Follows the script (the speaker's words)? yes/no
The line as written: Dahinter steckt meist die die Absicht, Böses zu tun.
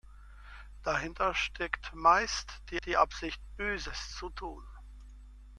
yes